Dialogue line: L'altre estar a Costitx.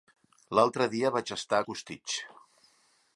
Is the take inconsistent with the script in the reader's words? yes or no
yes